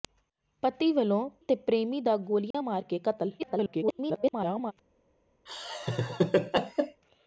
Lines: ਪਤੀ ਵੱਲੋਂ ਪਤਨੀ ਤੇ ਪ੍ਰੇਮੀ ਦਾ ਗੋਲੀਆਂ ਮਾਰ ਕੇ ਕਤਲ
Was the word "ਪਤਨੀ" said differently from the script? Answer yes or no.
yes